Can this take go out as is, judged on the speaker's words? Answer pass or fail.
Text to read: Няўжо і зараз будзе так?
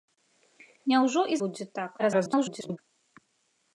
fail